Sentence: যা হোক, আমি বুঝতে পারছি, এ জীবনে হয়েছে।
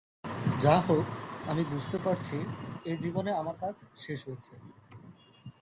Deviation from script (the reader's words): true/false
true